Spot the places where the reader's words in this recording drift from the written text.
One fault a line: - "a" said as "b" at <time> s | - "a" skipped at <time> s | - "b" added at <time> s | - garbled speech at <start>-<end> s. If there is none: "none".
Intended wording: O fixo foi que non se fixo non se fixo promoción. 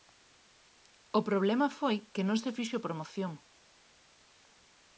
- "fixo" said as "problema" at 1.3 s
- "non se fixo" skipped at 2.8 s